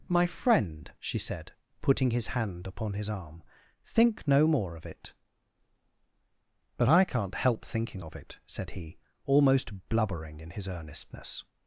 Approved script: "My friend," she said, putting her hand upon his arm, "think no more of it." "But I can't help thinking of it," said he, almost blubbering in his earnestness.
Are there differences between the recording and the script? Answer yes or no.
yes